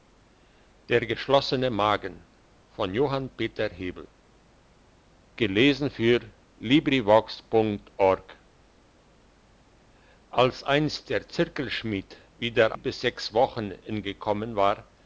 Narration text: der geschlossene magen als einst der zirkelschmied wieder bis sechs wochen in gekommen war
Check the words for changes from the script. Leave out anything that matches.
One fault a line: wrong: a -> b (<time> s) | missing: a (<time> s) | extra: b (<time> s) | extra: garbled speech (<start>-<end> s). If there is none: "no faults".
no faults